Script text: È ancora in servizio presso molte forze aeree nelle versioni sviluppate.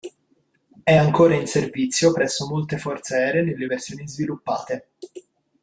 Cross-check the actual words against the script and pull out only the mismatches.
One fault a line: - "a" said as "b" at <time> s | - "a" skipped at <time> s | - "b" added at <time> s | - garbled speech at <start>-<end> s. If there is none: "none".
none